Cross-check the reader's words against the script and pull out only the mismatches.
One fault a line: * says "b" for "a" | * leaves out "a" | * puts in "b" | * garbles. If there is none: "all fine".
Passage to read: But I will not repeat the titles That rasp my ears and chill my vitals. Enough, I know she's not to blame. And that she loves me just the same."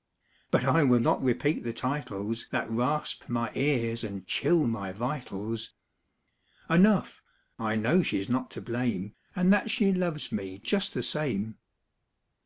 all fine